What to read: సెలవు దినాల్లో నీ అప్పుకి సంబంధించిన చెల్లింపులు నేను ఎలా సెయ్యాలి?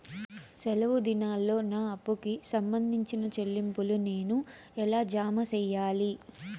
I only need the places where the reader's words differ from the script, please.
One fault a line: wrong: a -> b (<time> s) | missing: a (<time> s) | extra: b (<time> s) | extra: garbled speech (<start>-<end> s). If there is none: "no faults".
wrong: నీ -> నా (1.7 s)
extra: జామ (5.1 s)